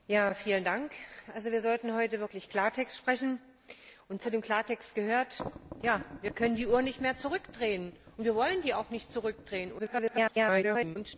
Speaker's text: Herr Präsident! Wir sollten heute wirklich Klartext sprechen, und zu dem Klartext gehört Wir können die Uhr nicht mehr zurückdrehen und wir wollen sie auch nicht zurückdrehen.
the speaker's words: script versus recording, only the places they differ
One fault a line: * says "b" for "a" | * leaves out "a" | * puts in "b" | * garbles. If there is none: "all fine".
* garbles